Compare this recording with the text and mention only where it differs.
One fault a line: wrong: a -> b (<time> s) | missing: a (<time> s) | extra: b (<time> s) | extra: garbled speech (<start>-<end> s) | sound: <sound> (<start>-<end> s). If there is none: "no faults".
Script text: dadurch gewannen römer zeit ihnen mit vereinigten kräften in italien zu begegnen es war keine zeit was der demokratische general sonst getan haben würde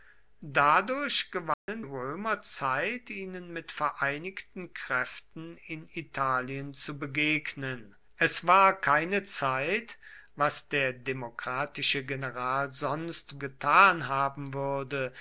sound: dropout (1.5-1.7 s)